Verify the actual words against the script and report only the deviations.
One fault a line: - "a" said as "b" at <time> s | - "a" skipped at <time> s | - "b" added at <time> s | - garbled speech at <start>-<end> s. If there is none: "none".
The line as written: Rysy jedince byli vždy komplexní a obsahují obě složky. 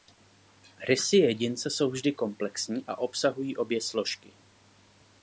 - "byli" said as "jsou" at 1.7 s